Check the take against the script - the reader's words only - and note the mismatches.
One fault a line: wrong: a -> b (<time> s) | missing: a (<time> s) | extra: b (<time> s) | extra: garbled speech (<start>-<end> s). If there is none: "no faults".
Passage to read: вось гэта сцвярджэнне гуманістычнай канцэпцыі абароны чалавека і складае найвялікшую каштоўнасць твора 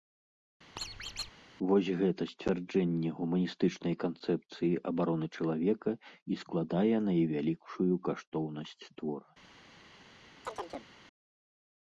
no faults